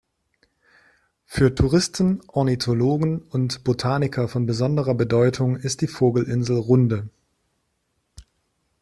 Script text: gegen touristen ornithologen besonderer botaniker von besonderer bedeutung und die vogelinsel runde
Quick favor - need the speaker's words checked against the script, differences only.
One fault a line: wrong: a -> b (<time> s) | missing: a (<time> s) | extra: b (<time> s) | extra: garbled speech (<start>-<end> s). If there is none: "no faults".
wrong: gegen -> für (1.2 s)
wrong: besonderer -> und (3.2 s)
wrong: und -> ist (5.6 s)